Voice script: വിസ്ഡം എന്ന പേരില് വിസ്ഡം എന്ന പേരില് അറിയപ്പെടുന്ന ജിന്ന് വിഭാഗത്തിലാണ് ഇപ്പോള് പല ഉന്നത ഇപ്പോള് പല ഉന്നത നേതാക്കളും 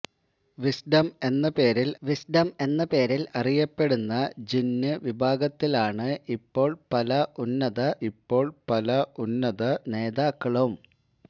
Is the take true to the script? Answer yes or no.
yes